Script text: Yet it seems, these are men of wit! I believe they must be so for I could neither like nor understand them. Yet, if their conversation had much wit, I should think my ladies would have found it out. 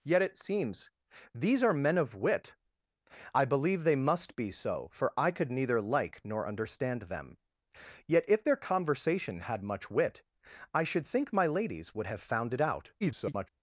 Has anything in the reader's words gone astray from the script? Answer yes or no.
yes